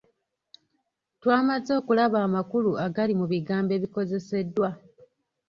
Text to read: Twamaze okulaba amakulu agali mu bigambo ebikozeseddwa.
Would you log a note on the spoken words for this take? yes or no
no